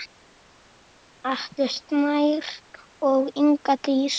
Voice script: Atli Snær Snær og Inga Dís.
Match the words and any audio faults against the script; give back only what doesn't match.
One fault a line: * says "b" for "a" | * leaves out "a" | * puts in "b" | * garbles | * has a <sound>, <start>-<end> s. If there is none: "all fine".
* leaves out "Snær"